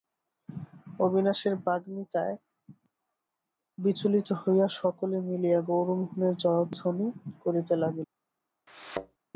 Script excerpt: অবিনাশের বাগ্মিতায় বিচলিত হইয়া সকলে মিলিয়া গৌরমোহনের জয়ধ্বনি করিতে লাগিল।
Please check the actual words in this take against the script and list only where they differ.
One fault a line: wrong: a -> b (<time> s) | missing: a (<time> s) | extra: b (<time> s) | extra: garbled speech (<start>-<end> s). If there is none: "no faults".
no faults